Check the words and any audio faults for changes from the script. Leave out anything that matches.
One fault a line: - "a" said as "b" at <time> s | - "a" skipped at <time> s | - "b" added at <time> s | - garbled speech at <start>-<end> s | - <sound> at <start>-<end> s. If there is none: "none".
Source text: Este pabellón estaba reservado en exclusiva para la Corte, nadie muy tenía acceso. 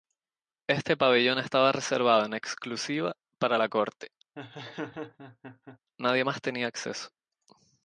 - laugh at 4.4-5.8 s
- "muy" said as "más" at 6.2 s